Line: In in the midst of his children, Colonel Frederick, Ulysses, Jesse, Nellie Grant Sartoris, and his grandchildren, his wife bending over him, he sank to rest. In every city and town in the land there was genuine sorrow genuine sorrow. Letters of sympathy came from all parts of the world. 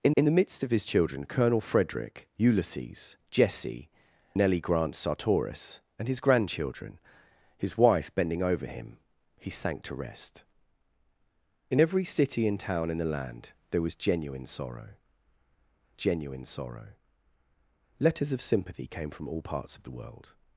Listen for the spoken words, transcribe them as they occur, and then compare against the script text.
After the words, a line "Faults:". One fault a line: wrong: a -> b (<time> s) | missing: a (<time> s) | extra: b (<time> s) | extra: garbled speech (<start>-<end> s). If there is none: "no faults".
In in the midst of his children, Colonel Frederick, Ulysses, Jesse, Nellie Grant Sartoris, and his grandchildren, his wife bending over him, he sank to rest. In every city and town in the land there was genuine sorrow genuine sorrow. Letters of sympathy came from all parts of the world.
Faults:
no faults